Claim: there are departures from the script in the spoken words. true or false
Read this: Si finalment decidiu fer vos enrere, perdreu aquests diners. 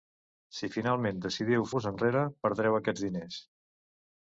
true